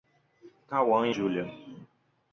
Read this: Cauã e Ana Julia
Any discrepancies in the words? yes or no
yes